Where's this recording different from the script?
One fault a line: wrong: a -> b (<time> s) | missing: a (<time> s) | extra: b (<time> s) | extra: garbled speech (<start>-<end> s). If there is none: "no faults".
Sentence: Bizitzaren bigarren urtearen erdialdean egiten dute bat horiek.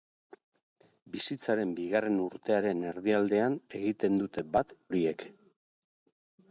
no faults